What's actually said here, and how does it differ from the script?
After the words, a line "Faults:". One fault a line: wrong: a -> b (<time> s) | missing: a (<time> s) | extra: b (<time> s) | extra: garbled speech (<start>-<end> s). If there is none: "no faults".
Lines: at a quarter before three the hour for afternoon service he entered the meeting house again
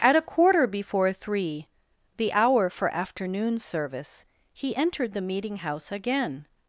at a quarter before three the hour for afternoon service he entered the meeting house again
Faults:
no faults